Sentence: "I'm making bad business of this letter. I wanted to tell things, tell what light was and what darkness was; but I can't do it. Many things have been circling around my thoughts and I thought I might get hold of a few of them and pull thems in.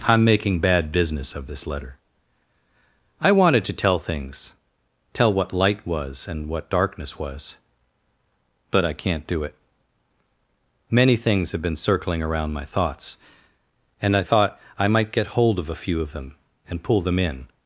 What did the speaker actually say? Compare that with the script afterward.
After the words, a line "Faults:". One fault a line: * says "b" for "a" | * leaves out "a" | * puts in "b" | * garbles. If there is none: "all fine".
"I'm making bad business of this letter. I wanted to tell things, tell what light was and what darkness was; but I can't do it. Many things have been circling around my thoughts and I thought I might get hold of a few of them and pull them in.
Faults:
* says "them" for "thems"